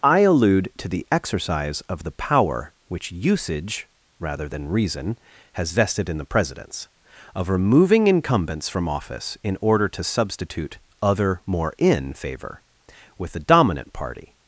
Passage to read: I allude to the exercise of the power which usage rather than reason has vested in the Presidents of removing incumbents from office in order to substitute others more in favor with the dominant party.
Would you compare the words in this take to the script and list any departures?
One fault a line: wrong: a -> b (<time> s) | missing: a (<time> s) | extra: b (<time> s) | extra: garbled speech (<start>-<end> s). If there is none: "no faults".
wrong: others -> other (11.0 s)